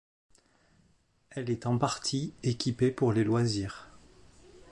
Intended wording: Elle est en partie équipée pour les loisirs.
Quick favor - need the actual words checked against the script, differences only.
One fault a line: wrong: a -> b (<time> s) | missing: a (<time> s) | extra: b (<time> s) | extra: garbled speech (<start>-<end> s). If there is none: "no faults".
no faults